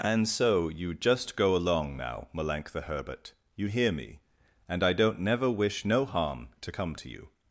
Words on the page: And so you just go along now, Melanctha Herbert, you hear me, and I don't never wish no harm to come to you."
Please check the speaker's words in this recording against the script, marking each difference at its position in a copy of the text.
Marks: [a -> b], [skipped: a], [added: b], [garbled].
And so you just go along now, Melanctha Herbert, you hear me, and I don't never wish no harm to come to you."